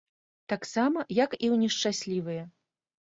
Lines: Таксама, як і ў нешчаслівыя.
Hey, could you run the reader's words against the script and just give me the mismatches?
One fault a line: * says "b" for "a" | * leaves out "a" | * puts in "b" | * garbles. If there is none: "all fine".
all fine